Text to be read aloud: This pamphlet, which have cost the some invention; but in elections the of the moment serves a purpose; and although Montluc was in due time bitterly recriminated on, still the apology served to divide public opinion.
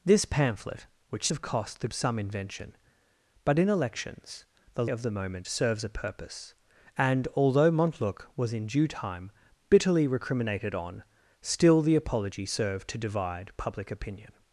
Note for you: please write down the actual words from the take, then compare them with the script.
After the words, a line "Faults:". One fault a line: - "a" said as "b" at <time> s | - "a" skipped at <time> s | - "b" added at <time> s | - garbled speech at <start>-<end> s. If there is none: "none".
This pamphlet, which have cost the some invention; but in elections the of the moment serves a purpose; and although Montluc was in due time bitterly recriminated on, still the apology served to divide public opinion.
Faults:
none